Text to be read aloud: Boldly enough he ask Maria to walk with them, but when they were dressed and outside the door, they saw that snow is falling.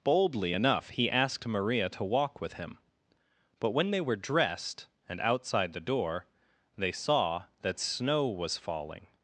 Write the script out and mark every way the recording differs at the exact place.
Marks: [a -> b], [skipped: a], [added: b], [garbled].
Boldly enough he [ask -> asked] Maria to walk with [them, -> him] but when they were dressed and outside the door, they saw that snow [is -> was] falling.